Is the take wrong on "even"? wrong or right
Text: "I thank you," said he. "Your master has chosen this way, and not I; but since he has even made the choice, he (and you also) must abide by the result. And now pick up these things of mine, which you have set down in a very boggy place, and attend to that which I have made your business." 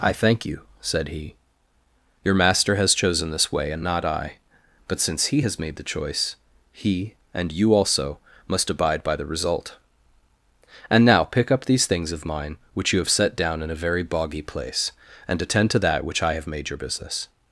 wrong